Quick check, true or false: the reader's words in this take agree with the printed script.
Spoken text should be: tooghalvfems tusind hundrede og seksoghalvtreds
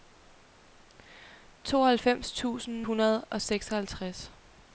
true